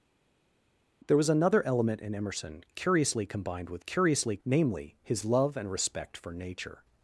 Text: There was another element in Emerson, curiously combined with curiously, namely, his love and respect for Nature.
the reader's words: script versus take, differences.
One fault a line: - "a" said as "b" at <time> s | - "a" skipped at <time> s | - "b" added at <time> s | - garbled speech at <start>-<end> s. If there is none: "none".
none